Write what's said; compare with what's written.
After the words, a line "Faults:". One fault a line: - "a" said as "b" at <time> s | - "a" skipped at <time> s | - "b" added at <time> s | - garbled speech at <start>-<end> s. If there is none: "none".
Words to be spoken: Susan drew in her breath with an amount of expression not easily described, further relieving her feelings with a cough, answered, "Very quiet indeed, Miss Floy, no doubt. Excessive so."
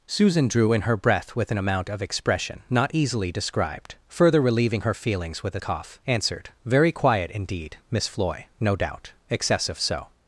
Susan drew in her breath with an amount of expression not easily described, further relieving her feelings with a cough, answered, "Very quiet indeed, Miss Floy, no doubt. Excessive so."
Faults:
none